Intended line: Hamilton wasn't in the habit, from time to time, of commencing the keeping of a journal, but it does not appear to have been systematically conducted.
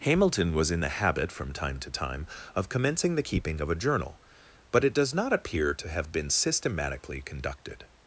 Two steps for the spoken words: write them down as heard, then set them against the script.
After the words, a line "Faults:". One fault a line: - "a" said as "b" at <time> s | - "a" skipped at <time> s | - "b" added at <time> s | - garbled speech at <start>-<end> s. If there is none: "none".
Hamilton was in the habit, from time to time, of commencing the keeping of a journal, but it does not appear to have been systematically conducted.
Faults:
- "wasn't" said as "was" at 0.6 s